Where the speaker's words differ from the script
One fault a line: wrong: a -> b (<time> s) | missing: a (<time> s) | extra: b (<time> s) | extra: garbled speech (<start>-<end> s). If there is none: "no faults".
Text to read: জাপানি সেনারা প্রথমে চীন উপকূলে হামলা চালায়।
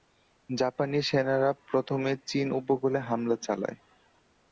no faults